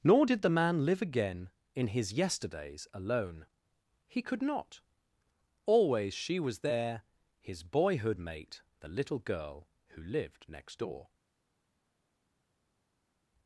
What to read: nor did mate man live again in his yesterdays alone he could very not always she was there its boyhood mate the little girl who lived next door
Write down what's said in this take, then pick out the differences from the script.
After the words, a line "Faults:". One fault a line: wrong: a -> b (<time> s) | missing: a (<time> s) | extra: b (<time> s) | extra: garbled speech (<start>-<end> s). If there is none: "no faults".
nor did the man live again in his yesterdays alone he could not always she was there his boyhood mate the little girl who lived next door
Faults:
wrong: mate -> the (0.4 s)
missing: very (4.4 s)
wrong: its -> his (7.4 s)